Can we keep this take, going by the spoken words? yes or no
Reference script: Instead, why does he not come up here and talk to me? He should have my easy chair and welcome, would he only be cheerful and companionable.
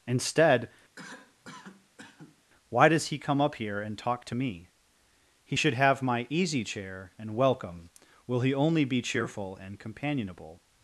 no